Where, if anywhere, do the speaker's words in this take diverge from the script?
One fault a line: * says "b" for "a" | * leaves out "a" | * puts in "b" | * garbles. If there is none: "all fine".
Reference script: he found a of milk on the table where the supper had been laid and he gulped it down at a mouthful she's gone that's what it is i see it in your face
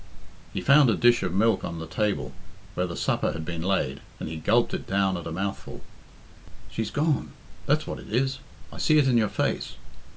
* puts in "dish"